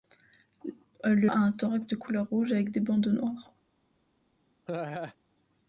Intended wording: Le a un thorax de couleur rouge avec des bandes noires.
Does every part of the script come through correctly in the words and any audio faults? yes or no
no